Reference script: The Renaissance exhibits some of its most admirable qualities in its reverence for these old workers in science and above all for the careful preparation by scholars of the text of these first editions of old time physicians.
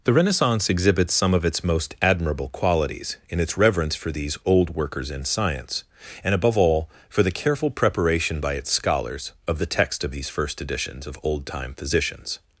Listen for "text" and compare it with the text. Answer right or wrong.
right